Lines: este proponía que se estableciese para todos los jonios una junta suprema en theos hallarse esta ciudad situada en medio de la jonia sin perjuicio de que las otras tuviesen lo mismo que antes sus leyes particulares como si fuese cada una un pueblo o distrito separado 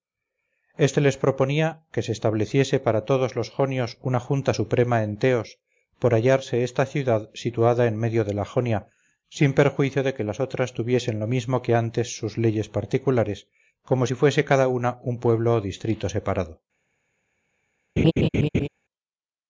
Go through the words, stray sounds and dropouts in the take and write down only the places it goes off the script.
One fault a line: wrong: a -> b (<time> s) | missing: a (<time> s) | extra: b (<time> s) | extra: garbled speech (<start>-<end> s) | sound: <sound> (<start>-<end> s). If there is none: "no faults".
extra: les (1.1 s)
extra: por (6.0 s)
sound: laugh (18.0-18.7 s)